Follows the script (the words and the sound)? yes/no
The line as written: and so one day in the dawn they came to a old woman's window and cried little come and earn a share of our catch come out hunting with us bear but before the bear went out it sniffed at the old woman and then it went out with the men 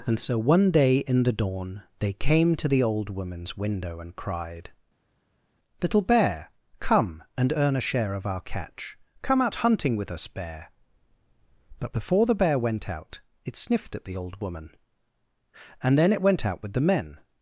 no